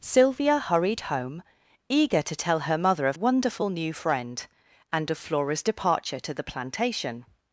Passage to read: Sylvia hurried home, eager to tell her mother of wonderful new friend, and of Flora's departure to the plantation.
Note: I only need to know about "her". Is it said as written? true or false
true